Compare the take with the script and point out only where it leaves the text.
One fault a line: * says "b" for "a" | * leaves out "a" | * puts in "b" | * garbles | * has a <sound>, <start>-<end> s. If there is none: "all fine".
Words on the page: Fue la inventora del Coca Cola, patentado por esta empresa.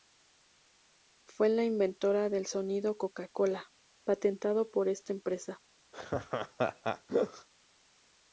* puts in "sonido"
* has a laugh, 5.9-7.5 s